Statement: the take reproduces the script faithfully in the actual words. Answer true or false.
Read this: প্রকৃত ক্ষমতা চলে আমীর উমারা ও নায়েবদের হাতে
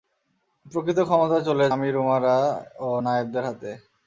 true